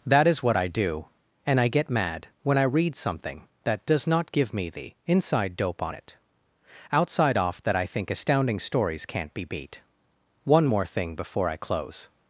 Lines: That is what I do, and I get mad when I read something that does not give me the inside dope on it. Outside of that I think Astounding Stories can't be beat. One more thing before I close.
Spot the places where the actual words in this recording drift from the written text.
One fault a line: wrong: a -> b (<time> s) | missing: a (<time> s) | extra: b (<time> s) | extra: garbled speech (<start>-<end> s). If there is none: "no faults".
wrong: of -> off (7.4 s)